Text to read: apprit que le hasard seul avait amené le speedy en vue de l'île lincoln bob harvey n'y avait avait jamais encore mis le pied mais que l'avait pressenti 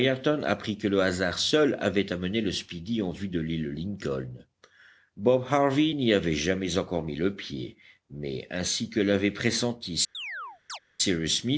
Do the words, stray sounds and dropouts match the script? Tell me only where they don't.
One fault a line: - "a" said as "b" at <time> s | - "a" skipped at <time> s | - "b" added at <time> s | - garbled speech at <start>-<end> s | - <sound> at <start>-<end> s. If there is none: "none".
- "avait" skipped at 6.4 s
- "ainsi" added at 8.5 s
- chirp at 10.1-10.8 s